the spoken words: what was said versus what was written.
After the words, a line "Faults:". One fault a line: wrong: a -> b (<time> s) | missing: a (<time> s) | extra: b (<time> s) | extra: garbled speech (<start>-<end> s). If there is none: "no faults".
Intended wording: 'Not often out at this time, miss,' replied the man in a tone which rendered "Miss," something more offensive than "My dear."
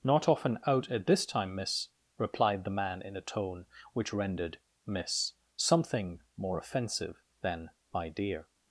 'Not often out at this time, miss,' replied the man in a tone which rendered "Miss," something more offensive than "My dear."
Faults:
no faults